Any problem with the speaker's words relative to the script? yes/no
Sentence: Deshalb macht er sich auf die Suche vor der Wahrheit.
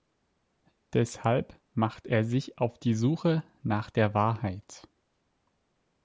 yes